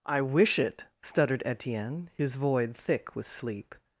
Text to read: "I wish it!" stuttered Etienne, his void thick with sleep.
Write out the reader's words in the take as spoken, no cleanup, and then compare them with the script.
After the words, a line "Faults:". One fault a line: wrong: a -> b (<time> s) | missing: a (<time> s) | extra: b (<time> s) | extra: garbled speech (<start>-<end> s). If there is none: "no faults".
"I wish it!" stuttered Etienne, his void thick with sleep.
Faults:
no faults